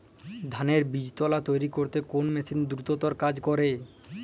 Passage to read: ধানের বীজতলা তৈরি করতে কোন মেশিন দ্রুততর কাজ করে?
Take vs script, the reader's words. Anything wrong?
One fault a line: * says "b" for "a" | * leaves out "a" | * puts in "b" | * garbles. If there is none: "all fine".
all fine